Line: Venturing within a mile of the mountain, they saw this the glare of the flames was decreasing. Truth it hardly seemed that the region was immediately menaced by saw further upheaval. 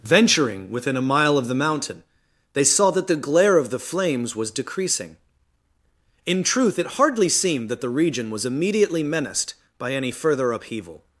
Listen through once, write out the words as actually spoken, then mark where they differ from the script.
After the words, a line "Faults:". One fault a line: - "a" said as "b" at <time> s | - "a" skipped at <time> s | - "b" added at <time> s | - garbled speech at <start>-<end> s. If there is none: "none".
Venturing within a mile of the mountain, they saw that the glare of the flames was decreasing. In truth it hardly seemed that the region was immediately menaced by any further upheaval.
Faults:
- "this" said as "that" at 2.9 s
- "In" added at 6.2 s
- "saw" said as "any" at 9.9 s